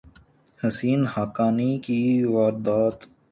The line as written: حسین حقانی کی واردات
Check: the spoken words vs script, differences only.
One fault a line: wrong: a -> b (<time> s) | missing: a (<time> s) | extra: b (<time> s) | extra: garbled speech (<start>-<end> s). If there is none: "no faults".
no faults